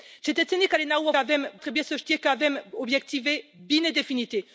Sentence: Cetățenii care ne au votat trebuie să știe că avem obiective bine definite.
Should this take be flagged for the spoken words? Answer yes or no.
yes